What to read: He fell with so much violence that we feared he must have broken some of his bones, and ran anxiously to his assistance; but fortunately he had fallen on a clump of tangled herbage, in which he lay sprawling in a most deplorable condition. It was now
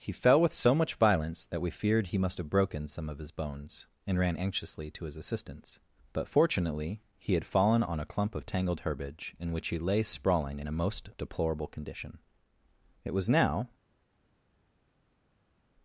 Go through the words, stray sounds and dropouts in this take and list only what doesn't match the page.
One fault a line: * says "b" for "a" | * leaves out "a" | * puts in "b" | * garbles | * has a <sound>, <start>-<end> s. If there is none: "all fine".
all fine